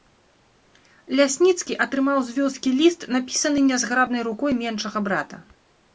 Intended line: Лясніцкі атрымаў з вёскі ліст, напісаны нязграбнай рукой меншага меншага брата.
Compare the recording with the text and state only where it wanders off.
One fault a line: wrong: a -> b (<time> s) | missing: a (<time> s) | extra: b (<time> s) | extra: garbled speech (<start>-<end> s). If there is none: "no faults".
missing: меншага (5.0 s)